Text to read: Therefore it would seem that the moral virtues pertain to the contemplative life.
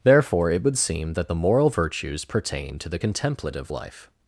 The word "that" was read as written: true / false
true